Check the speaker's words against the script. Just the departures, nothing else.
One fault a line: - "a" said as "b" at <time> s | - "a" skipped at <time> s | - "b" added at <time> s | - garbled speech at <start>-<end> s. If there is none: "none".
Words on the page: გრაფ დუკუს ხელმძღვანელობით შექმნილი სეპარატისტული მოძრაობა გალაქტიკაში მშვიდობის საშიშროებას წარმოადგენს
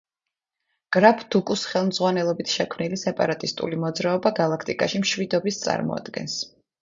- "საშიშროებას" skipped at 5.6 s